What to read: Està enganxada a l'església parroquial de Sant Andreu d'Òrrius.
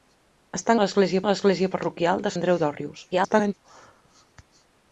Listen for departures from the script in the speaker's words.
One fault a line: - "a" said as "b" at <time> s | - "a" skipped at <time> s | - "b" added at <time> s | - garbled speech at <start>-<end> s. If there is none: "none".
- "enganxada" said as "l'església" at 0.8 s
- "Sant" skipped at 2.3 s
- garbled speech at 3.1-3.5 s